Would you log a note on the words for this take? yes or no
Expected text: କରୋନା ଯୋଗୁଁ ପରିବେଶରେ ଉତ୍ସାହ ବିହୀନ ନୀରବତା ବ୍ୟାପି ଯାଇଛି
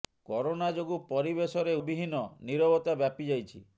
yes